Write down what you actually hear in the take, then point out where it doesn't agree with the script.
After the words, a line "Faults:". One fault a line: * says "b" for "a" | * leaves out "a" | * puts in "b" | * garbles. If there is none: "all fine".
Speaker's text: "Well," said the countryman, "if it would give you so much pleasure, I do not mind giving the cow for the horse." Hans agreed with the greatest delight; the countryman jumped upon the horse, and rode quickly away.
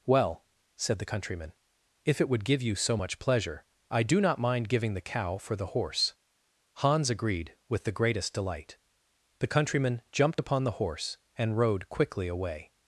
"Well," said the countryman, "if it would give you so much pleasure, I do not mind giving the cow for the horse." Hans agreed with the greatest delight; the countryman jumped upon the horse, and rode quickly away.
Faults:
all fine